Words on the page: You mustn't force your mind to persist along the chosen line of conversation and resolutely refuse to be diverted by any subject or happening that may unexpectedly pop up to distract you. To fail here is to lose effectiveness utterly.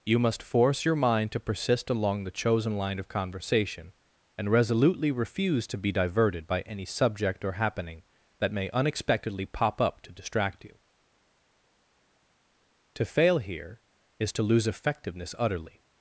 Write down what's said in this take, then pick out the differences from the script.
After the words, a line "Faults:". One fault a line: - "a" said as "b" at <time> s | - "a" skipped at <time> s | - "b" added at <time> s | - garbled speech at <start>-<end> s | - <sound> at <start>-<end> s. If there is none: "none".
You must force your mind to persist along the chosen line of conversation and resolutely refuse to be diverted by any subject or happening that may unexpectedly pop up to distract you. To fail here is to lose effectiveness utterly.
Faults:
- "mustn't" said as "must" at 0.2 s